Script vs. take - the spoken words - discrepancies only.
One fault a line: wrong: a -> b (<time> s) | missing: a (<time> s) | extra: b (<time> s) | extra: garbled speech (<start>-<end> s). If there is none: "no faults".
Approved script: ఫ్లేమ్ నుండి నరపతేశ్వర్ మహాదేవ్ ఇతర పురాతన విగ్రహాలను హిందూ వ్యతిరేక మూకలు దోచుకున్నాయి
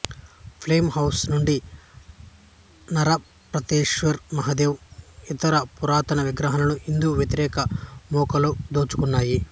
extra: హౌస్ (0.9 s)